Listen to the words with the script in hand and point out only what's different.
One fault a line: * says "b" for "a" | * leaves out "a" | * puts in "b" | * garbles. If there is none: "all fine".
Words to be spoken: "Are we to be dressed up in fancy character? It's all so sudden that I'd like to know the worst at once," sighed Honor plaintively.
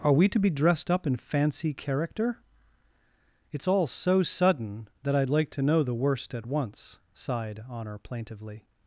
all fine